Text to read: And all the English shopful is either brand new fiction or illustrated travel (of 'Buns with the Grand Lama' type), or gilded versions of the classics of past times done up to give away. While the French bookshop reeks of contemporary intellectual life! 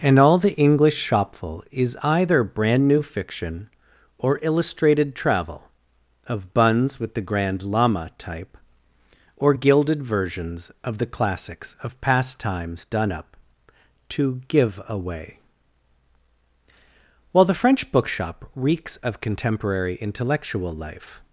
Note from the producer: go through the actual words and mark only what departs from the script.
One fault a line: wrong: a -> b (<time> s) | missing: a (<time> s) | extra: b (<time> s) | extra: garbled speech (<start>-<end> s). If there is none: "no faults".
no faults